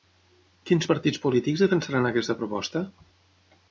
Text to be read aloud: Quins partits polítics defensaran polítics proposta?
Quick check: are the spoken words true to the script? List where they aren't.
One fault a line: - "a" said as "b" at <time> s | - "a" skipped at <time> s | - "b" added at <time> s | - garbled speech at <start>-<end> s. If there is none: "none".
- "polítics" said as "aquesta" at 2.1 s